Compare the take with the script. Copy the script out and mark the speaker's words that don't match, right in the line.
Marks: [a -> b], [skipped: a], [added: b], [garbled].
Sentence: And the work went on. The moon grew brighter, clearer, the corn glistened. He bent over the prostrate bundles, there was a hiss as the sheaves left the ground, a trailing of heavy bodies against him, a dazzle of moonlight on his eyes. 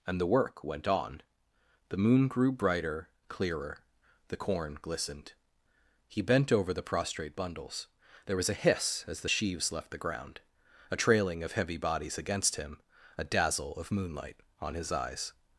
And the work went on. The moon grew brighter, clearer, the corn glistened. He bent over the prostrate bundles, there was a hiss as the sheaves left the ground, a trailing of heavy bodies against him, a dazzle of moonlight on his eyes.